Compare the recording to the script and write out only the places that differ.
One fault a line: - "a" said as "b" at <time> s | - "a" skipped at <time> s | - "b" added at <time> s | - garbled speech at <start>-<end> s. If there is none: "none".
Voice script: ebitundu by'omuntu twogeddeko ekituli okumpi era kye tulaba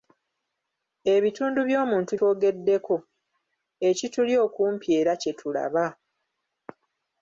none